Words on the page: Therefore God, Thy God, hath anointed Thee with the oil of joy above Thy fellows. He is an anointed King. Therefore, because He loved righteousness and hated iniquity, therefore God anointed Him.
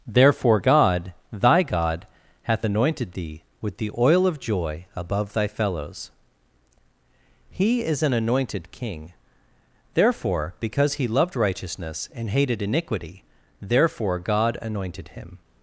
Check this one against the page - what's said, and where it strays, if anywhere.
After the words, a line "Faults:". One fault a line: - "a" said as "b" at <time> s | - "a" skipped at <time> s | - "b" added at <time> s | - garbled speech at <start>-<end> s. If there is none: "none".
Therefore God, Thy God, hath anointed Thee with the oil of joy above Thy fellows. He is an anointed King. Therefore, because He loved righteousness and hated iniquity, therefore God anointed Him.
Faults:
none